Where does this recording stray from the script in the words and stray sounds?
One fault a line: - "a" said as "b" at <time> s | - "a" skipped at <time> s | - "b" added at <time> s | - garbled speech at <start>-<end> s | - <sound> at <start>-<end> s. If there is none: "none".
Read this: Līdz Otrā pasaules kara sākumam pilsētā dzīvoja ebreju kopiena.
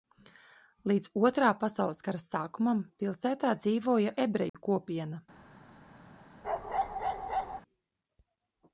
- dropout at 4.5-4.5 s
- bark at 6.4-7.6 s